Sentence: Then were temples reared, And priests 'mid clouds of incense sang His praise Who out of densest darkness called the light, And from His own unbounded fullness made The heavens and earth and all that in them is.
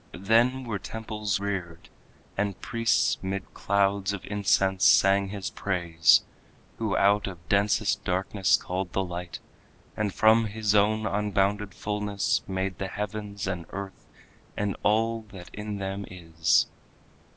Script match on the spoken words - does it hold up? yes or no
yes